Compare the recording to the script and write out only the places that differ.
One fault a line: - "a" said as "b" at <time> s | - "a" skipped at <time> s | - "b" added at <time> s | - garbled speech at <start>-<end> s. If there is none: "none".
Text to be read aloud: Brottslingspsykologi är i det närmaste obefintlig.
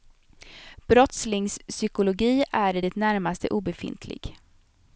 none